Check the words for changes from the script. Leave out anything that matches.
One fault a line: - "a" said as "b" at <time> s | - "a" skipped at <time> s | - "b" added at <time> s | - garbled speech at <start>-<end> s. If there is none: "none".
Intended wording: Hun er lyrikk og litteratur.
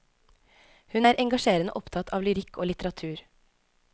- "engasjerende opptatt av" added at 1.2 s